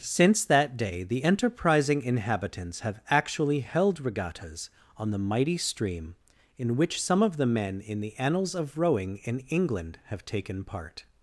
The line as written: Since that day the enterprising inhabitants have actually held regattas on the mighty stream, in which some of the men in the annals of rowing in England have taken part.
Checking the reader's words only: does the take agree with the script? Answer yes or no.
yes